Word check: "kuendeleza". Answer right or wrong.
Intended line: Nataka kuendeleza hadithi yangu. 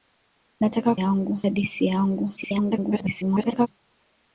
wrong